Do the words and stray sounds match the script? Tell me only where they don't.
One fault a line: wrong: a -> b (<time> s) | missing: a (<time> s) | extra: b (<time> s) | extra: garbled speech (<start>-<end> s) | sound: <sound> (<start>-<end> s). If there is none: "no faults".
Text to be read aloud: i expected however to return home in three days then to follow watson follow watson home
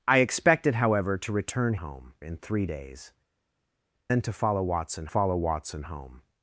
no faults